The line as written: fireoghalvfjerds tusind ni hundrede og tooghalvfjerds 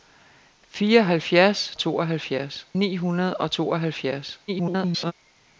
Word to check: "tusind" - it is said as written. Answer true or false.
false